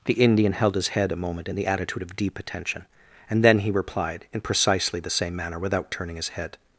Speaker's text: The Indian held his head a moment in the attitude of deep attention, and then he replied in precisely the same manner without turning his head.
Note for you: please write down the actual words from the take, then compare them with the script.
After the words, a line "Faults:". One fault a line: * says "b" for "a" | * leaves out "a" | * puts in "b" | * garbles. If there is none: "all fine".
The Indian held his head a moment in the attitude of deep attention, and then he replied in precisely the same manner without turning his head.
Faults:
all fine